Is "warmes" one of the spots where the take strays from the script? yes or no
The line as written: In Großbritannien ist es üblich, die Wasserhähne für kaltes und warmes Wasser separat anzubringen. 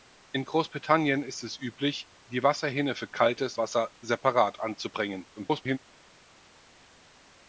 yes